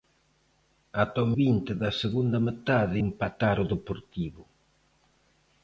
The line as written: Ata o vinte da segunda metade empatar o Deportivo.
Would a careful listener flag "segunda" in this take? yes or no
no